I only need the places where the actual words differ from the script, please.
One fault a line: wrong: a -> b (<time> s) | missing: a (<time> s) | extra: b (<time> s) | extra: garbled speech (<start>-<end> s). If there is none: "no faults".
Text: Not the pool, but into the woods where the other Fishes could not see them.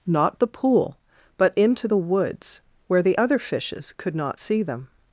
no faults